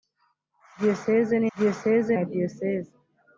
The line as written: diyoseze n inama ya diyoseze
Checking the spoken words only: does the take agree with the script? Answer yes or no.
no